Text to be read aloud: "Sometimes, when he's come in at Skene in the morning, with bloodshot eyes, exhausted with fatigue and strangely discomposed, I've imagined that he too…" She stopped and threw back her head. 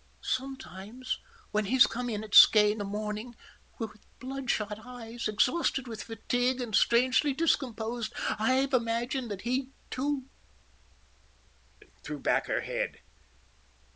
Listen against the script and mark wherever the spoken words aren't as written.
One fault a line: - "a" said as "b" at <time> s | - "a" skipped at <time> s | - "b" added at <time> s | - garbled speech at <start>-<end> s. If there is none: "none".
- "in" skipped at 2.8 s
- "She stopped" skipped at 10.3 s